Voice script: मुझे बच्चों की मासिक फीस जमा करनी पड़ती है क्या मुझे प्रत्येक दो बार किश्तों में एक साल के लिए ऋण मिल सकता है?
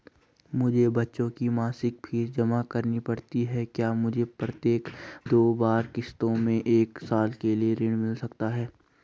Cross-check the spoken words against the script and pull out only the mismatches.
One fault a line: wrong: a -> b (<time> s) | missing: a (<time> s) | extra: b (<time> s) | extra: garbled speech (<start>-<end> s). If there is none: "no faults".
no faults